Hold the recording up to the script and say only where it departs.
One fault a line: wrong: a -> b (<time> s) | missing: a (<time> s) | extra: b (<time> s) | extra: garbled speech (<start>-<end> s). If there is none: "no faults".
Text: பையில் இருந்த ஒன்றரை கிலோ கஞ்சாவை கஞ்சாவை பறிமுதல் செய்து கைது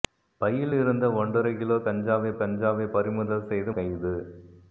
no faults